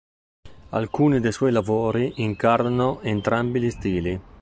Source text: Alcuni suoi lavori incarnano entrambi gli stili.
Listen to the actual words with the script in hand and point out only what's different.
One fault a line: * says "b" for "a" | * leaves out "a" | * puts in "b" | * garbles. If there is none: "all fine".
* puts in "dei"